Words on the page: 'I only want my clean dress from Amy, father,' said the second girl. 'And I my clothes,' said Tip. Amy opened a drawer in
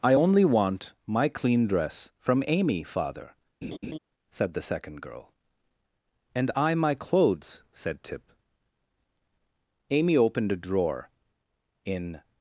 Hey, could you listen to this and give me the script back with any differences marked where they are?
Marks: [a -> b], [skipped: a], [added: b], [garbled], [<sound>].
'I only want my clean dress from Amy, father,' [laugh] said the second girl. 'And I my clothes,' said Tip. Amy opened a drawer in